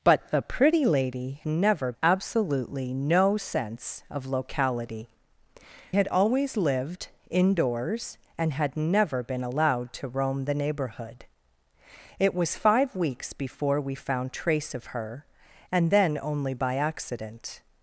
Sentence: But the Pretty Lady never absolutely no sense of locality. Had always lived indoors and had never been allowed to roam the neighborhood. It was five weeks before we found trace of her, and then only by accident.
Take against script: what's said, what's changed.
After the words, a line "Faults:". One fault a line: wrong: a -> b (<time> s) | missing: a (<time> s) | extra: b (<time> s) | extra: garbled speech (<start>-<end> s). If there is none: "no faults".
But the Pretty Lady never absolutely no sense of locality. Had always lived indoors and had never been allowed to roam the neighborhood. It was five weeks before we found trace of her, and then only by accident.
Faults:
no faults